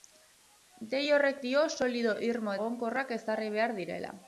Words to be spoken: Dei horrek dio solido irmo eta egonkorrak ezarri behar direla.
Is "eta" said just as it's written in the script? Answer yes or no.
no